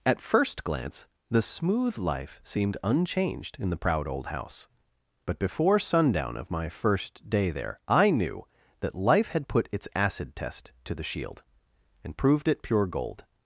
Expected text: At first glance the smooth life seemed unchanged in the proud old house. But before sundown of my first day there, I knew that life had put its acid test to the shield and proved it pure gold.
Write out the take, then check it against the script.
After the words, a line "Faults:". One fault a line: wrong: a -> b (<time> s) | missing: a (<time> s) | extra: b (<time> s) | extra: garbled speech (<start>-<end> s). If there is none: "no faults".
At first glance the smooth life seemed unchanged in the proud old house. But before sundown of my first day there, I knew that life had put its acid test to the shield and proved it pure gold.
Faults:
no faults